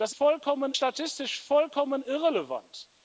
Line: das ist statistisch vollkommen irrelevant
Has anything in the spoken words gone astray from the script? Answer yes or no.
yes